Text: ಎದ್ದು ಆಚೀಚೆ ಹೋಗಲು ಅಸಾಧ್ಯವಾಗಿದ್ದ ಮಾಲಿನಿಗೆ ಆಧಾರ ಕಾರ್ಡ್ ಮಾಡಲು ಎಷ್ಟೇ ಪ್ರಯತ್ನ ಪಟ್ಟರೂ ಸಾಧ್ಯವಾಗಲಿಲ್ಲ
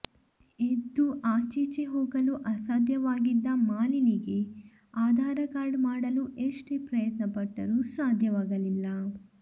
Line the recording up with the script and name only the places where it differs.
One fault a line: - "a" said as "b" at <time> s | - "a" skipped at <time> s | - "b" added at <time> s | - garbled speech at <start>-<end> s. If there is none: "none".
none